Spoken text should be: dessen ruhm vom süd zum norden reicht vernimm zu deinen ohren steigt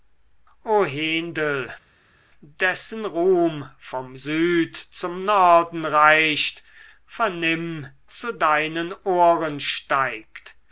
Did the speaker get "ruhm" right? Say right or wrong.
right